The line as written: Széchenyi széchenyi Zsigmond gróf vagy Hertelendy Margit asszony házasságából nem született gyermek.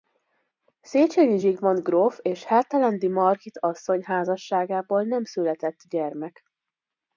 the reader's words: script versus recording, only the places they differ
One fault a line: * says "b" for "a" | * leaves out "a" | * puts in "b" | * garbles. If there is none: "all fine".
* leaves out "széchenyi"
* says "és" for "vagy"